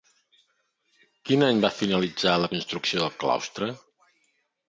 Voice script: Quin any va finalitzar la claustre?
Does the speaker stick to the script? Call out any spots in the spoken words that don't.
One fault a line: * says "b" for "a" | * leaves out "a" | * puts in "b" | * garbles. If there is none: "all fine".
* puts in "construcció del"